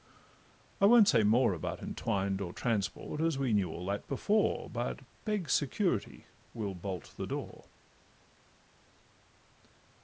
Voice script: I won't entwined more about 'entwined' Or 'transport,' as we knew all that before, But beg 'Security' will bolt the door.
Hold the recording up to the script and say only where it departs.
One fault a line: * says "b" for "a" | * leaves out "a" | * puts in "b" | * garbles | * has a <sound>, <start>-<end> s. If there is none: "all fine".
* says "say" for "entwined"